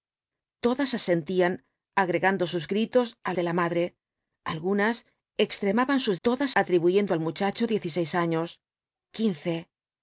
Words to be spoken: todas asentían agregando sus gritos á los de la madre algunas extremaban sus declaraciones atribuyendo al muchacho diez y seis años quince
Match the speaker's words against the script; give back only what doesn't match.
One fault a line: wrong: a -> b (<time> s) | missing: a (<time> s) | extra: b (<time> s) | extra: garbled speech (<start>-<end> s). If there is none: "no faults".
missing: los (3.3 s)
wrong: declaraciones -> todas (6.3 s)